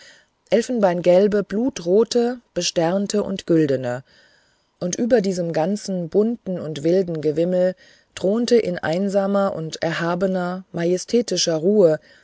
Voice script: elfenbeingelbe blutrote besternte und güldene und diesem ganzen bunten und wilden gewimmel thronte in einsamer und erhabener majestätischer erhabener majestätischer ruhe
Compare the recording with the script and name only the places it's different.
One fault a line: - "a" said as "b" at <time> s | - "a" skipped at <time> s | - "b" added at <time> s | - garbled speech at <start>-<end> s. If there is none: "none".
- "über" added at 4.9 s
- "erhabener majestätischer" skipped at 11.6 s